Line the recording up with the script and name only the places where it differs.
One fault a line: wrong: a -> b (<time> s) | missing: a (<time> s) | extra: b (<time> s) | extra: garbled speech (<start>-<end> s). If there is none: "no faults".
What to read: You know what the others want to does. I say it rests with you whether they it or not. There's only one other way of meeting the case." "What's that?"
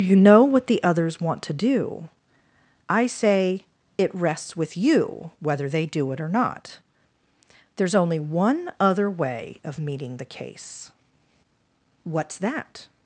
wrong: does -> do (1.5 s)
extra: do (5.8 s)